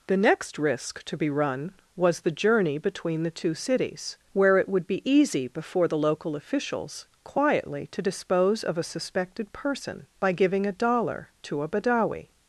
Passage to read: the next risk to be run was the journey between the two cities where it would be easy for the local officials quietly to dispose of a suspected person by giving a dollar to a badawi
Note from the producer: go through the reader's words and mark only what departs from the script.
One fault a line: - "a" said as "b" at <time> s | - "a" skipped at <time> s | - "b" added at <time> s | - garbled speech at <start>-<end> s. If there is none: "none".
- "for" said as "before" at 5.5 s